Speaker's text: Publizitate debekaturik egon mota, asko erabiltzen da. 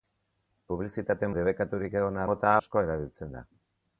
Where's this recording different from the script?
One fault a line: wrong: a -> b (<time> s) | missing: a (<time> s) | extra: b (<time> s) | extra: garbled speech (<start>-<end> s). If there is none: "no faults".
no faults